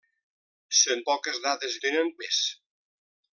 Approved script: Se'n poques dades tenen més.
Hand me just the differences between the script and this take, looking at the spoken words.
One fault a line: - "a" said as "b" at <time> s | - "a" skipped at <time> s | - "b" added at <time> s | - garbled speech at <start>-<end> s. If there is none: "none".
none